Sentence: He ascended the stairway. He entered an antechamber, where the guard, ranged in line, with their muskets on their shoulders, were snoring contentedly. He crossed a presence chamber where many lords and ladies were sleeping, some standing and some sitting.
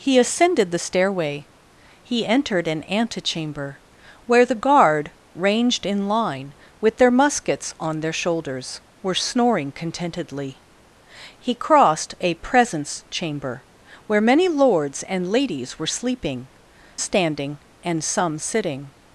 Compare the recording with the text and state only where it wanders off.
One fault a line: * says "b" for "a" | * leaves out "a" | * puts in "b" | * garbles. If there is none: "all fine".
* leaves out "some"